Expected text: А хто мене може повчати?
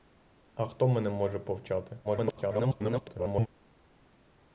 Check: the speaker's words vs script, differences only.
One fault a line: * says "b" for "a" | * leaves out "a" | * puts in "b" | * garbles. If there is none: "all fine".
* garbles